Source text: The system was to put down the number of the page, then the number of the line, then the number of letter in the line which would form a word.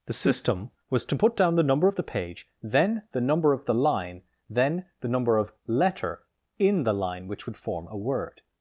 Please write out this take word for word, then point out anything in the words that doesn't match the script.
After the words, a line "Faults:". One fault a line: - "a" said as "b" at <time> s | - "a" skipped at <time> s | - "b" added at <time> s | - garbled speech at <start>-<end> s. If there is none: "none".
The system was to put down the number of the page, then the number of the line, then the number of letter in the line which would form a word.
Faults:
none